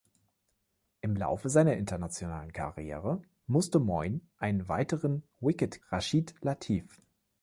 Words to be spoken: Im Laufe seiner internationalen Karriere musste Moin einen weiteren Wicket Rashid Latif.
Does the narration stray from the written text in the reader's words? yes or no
no